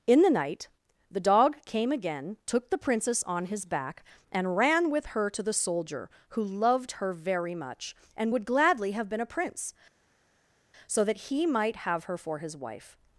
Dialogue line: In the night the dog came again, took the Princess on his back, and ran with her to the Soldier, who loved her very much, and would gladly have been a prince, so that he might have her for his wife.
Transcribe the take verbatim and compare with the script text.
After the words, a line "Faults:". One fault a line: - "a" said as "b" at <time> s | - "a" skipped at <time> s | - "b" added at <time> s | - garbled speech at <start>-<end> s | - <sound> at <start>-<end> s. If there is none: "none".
In the night the dog came again, took the Princess on his back, and ran with her to the Soldier, who loved her very much, and would gladly have been a prince, so that he might have her for his wife.
Faults:
none